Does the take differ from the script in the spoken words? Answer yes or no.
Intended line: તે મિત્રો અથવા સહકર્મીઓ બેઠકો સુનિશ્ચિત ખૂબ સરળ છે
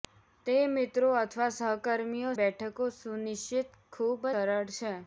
no